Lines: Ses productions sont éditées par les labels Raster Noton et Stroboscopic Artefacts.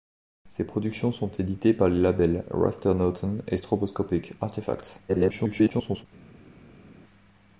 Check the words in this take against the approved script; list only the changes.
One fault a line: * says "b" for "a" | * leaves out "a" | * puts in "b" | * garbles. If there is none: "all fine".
* garbles